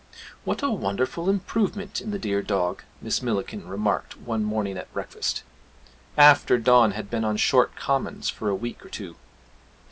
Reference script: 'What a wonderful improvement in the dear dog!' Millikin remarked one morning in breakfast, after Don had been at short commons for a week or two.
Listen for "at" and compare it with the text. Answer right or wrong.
wrong